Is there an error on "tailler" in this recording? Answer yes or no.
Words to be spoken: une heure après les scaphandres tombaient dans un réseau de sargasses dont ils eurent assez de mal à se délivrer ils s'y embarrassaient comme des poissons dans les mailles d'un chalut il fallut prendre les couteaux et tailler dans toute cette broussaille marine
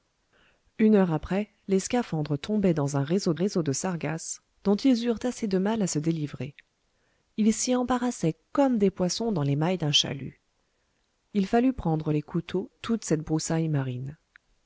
yes